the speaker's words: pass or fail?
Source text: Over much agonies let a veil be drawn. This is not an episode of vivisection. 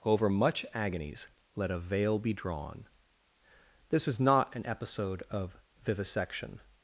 pass